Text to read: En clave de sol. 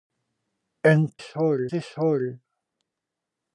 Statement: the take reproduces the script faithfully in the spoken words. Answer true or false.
false